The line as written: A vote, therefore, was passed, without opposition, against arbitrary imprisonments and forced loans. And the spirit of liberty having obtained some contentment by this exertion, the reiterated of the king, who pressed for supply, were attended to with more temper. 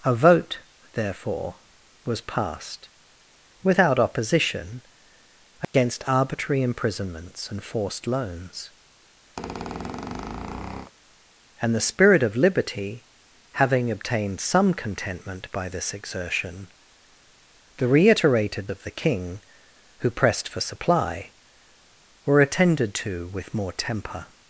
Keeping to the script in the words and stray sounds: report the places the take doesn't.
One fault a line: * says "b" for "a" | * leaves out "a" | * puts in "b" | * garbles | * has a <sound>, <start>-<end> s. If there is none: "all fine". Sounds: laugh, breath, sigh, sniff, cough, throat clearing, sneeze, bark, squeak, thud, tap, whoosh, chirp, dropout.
* has a dropout, 5.6-5.7 s
* has a squeak, 9.4-10.9 s